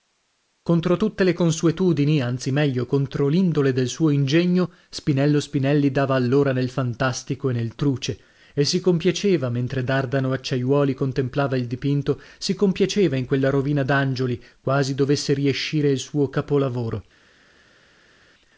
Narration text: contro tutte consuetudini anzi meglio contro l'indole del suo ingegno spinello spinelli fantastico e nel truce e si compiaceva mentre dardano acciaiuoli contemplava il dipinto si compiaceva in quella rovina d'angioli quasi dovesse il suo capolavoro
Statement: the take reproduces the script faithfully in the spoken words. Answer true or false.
false